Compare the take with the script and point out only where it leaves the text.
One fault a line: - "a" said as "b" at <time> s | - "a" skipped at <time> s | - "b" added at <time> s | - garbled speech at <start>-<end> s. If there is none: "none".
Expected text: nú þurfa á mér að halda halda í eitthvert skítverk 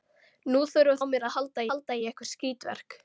none